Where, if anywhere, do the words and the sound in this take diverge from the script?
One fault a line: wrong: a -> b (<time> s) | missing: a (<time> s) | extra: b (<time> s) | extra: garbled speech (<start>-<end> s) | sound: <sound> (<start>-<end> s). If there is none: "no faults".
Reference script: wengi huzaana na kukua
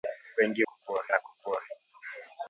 wrong: huzaana -> kukua (0.6 s)